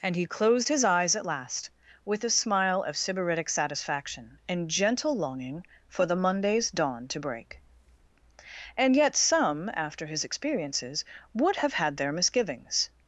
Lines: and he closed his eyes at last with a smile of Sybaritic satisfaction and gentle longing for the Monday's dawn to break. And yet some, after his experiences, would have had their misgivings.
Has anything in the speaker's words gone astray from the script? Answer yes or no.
no